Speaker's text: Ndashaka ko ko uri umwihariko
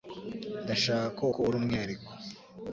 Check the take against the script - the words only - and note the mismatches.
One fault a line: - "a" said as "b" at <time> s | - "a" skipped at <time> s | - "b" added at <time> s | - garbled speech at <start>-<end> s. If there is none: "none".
none